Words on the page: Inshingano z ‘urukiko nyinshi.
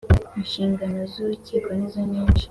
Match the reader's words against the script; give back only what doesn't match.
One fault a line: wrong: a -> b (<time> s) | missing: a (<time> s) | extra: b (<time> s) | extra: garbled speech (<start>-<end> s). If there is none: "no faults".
extra: nizo (1.8 s)